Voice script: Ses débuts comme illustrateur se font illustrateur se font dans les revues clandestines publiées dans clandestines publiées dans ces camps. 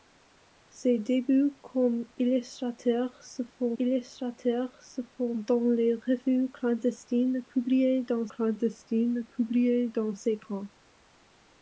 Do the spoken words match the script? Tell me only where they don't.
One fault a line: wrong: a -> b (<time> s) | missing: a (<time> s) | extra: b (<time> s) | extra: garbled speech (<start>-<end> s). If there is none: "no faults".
no faults